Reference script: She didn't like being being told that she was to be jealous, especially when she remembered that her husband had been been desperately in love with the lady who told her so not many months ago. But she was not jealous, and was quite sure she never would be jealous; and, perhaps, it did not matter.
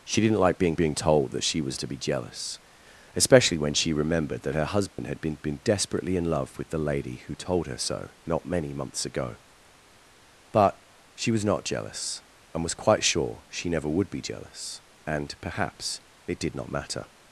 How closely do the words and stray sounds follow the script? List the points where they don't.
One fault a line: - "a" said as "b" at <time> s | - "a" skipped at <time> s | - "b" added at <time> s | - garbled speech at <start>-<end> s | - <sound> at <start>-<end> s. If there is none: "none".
- dropout at 4.9-5.0 s